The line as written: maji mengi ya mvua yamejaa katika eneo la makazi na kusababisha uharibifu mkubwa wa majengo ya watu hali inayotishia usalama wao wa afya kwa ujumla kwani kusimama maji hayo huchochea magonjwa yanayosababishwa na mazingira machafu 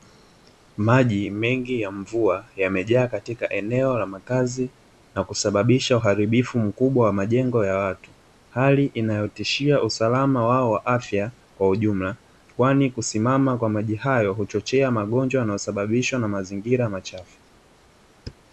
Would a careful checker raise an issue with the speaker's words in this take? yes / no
yes